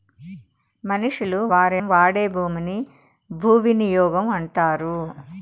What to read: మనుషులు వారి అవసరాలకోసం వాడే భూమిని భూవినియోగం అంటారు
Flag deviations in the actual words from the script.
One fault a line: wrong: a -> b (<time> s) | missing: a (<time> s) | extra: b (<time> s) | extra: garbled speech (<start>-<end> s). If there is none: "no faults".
missing: అవసరాలకోసం (1.8 s)